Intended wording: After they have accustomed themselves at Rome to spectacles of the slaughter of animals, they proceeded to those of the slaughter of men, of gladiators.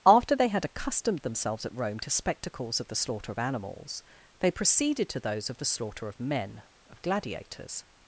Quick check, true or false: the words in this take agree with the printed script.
false